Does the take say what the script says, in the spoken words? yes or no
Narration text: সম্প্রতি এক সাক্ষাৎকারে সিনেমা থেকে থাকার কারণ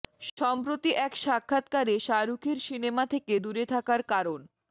no